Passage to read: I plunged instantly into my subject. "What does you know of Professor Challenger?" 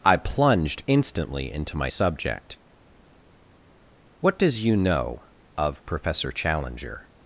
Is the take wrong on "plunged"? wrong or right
right